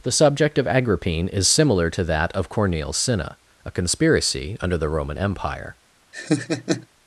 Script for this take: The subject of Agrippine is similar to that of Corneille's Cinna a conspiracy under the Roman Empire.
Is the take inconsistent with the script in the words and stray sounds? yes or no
yes